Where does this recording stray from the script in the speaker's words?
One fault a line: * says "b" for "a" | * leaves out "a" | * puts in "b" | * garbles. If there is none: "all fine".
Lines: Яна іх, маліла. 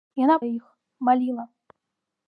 all fine